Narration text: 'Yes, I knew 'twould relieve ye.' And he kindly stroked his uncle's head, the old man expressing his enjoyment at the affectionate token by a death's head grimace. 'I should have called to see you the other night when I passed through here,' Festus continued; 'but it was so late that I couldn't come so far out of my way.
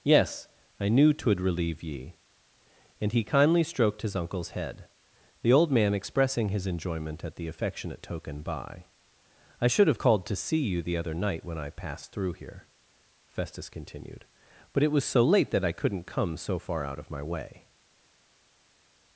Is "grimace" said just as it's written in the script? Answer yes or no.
no